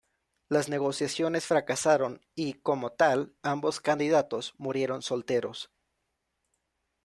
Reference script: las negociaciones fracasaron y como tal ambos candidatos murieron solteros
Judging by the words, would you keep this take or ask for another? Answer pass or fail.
pass